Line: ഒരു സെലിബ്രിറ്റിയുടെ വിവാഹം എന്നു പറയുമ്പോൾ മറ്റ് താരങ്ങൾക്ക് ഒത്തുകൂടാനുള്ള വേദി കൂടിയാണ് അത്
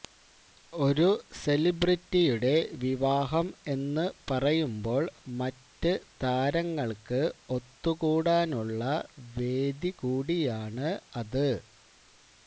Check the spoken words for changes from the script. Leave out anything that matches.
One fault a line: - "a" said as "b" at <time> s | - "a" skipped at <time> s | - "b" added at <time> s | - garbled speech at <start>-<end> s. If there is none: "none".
none